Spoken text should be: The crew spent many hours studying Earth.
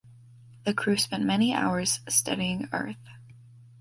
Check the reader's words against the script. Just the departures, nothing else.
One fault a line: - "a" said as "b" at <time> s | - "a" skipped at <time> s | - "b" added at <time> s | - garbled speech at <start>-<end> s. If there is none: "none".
none